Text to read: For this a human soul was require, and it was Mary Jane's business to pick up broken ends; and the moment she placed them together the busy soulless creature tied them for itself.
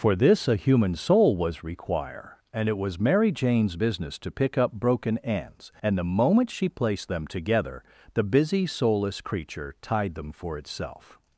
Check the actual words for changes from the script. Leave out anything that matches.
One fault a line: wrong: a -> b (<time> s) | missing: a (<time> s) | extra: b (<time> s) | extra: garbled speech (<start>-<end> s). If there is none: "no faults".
no faults